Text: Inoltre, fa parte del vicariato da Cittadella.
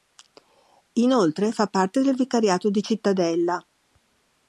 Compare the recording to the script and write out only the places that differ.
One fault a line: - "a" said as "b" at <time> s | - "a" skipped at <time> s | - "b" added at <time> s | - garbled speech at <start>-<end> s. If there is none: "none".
- "da" said as "di" at 2.7 s